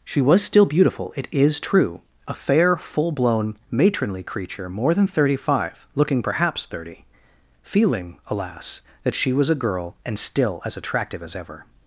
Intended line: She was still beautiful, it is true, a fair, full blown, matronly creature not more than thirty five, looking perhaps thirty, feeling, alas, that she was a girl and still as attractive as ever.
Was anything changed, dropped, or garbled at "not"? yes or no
yes